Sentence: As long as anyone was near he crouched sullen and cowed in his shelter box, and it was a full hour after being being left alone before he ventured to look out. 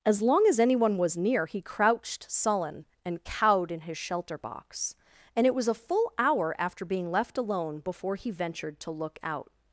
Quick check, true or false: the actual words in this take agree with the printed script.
false